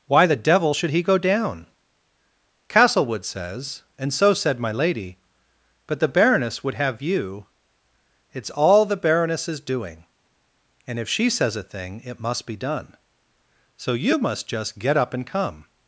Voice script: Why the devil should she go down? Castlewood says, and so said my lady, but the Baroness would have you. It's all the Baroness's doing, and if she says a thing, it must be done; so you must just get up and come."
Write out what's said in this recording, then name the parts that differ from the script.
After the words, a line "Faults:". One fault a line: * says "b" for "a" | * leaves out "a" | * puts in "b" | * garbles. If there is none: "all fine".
Why the devil should he go down? Castlewood says, and so said my lady, but the Baroness would have you. It's all the Baroness's doing, and if she says a thing, it must be done; so you must just get up and come."
Faults:
* says "he" for "she"